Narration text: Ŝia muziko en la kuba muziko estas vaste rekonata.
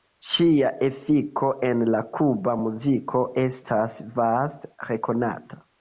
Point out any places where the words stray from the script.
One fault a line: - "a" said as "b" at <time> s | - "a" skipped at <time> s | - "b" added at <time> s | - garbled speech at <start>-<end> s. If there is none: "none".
- "muziko" said as "efiko" at 0.9 s